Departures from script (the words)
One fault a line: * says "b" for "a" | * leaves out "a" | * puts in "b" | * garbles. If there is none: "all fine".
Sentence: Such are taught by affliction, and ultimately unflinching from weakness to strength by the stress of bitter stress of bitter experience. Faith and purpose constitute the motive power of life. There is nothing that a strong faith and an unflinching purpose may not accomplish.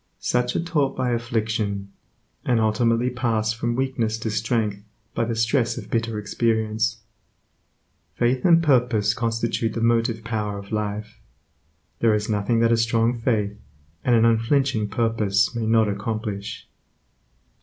* says "pass" for "unflinching"
* leaves out "stress of bitter"